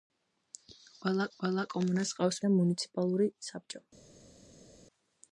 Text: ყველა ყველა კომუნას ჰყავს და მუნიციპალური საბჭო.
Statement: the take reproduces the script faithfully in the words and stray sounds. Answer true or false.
true